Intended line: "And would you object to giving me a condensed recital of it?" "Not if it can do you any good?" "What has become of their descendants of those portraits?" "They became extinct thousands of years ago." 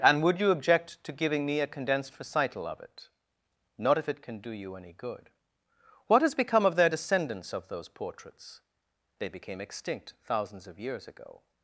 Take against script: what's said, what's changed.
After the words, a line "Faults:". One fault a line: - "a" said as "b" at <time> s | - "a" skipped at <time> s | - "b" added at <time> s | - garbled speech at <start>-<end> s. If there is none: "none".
"And would you object to giving me a condensed recital of it?" "Not if it can do you any good?" "What has become of their descendants of those portraits?" "They became extinct thousands of years ago."
Faults:
none